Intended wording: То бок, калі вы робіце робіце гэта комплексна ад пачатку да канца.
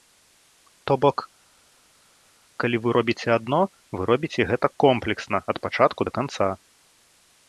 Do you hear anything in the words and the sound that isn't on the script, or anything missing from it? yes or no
yes